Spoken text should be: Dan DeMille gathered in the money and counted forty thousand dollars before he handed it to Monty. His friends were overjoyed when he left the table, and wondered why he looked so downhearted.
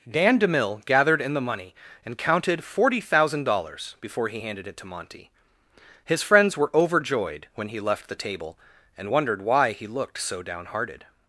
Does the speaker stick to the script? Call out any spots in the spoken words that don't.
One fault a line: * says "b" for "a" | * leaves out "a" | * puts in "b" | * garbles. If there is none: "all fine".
all fine